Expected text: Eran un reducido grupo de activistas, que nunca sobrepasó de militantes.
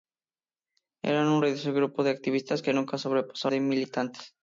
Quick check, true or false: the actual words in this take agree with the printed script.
true